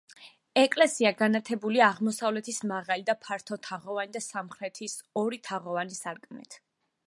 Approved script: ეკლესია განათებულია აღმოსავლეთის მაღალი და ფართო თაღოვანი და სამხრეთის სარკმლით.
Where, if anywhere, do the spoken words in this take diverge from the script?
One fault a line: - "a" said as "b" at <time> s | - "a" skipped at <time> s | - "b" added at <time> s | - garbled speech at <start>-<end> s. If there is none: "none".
- "ორი თაღოვანი" added at 5.2 s